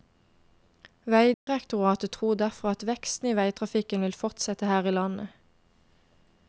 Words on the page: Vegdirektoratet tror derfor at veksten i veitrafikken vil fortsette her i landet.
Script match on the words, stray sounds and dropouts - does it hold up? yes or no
no